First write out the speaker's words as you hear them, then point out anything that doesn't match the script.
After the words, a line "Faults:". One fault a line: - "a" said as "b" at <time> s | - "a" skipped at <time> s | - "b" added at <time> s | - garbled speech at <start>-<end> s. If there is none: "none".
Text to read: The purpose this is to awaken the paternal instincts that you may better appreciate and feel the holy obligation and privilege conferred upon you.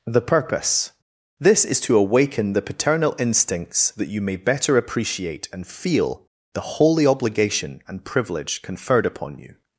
The purpose this is to awaken the paternal instincts that you may better appreciate and feel the holy obligation and privilege conferred upon you.
Faults:
none